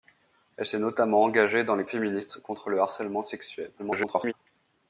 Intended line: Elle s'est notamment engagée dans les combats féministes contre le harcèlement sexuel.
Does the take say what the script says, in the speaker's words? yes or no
no